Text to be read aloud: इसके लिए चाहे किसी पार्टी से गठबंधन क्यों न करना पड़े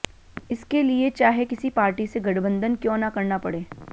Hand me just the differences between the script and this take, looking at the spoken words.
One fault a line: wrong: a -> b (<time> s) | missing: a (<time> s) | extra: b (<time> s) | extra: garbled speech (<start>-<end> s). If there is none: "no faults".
no faults